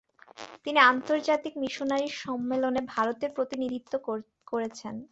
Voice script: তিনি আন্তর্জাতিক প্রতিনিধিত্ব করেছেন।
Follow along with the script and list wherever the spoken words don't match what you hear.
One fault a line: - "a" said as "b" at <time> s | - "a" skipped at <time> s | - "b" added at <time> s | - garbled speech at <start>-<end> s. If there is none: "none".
- "মিশনারি সম্মেলনে ভারতের" added at 1.6 s